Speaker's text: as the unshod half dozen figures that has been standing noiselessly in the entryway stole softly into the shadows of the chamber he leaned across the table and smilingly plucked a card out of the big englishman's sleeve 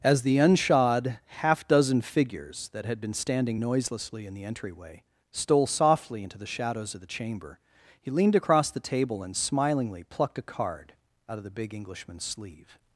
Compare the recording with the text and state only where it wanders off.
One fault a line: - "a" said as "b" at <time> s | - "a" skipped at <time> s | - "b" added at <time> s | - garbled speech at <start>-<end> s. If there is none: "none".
- "has" said as "had" at 2.9 s